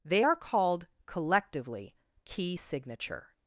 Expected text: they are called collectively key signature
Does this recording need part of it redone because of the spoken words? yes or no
no